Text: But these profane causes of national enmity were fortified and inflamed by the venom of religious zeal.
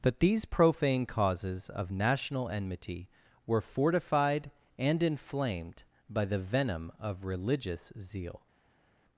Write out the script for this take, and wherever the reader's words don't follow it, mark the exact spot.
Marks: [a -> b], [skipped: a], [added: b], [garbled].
But these profane causes of national enmity were fortified and inflamed by the venom of religious zeal.